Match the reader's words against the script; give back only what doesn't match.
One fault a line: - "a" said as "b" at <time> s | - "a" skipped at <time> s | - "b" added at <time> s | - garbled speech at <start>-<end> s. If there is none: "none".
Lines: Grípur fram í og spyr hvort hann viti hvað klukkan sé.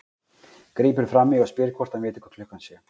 none